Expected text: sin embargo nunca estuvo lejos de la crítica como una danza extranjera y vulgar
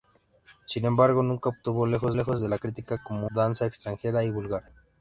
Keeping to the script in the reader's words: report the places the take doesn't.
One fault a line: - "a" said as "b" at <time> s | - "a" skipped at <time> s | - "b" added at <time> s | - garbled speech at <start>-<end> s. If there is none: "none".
- "lejos" added at 2.1 s
- "una" skipped at 3.3 s